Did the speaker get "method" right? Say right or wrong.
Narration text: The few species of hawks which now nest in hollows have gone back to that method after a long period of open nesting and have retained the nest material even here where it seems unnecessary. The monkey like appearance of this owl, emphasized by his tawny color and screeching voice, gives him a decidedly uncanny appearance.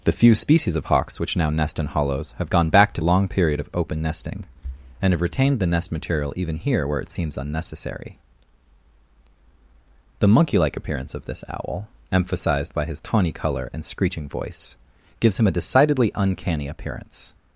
wrong